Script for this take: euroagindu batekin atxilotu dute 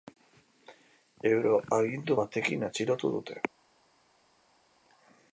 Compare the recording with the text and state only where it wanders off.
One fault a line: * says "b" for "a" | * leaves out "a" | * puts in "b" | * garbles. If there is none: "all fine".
all fine